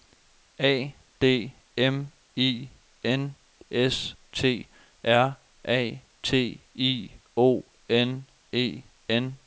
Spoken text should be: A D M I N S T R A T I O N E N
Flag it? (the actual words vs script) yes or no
no